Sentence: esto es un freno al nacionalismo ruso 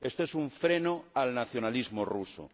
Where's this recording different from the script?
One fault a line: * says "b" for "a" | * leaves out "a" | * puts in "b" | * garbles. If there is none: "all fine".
all fine